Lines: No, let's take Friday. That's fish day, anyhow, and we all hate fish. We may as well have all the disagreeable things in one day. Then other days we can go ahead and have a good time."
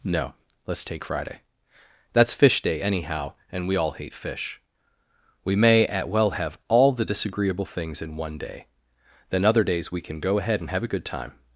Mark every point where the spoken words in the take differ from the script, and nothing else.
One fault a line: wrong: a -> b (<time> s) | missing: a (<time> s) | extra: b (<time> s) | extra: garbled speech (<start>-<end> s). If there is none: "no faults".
wrong: as -> at (5.9 s)